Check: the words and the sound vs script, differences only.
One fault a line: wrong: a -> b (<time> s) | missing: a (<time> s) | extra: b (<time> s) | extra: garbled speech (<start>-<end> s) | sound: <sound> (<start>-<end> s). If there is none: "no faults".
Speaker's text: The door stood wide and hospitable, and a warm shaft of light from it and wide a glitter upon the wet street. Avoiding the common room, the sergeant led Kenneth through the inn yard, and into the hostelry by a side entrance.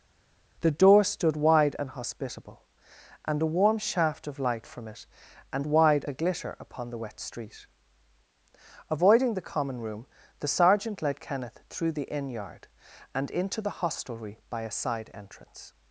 no faults